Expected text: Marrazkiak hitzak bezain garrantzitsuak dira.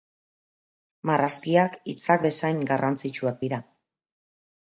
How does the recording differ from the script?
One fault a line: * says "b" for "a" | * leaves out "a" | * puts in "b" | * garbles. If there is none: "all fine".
all fine